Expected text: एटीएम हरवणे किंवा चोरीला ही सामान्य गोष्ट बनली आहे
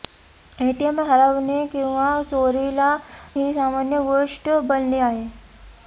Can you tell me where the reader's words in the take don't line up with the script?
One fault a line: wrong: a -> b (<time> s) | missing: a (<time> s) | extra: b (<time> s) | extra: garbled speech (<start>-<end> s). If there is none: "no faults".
no faults